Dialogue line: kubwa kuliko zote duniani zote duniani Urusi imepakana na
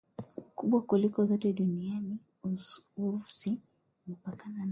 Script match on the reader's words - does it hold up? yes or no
no